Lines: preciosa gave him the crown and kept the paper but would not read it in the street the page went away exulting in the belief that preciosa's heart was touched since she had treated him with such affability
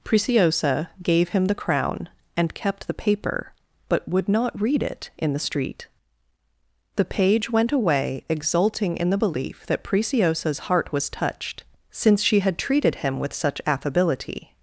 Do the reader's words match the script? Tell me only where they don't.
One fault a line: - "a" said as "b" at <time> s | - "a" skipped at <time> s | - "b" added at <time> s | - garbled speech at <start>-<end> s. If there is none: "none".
none